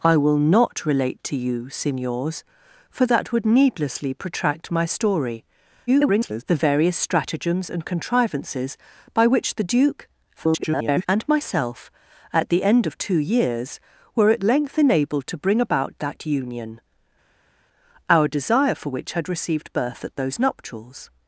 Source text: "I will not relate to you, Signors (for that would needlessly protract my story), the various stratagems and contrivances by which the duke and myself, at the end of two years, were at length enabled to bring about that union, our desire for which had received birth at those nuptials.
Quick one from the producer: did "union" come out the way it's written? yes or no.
yes